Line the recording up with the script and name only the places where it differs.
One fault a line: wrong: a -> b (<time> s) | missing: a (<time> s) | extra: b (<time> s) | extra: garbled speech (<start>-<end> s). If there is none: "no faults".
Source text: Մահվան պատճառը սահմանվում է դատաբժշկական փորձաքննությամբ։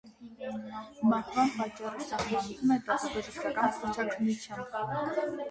no faults